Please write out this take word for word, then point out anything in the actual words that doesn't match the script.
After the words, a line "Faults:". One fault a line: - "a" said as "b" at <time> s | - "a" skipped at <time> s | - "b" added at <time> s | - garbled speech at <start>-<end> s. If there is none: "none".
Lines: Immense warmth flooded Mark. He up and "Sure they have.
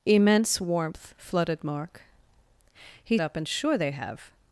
Immense warmth flooded Mark. He up and "Sure they have.
Faults:
none